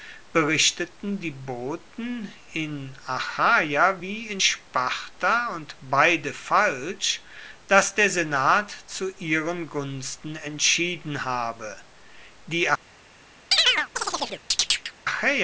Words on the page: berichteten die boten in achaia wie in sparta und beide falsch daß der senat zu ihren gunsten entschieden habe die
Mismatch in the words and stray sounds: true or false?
true